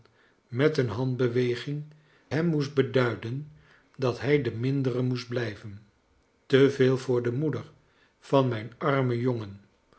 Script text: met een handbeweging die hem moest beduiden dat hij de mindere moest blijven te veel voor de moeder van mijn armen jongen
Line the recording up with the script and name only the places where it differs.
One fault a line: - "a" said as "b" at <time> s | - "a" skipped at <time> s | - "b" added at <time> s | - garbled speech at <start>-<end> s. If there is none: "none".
- "die" skipped at 1.8 s